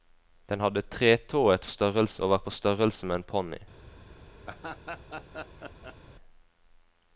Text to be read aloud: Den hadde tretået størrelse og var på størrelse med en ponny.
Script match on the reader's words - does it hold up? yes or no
yes